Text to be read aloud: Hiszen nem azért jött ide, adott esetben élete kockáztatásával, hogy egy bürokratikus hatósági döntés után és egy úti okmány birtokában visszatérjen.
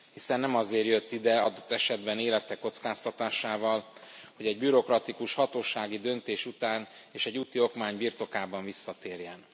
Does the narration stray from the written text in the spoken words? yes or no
no